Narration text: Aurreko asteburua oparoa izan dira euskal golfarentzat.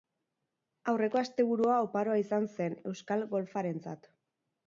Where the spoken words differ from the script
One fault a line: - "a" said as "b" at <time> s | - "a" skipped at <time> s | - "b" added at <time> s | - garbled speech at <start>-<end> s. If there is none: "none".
- "dira" said as "zen" at 2.5 s